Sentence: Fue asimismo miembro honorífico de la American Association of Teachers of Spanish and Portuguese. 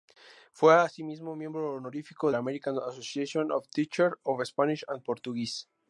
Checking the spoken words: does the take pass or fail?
fail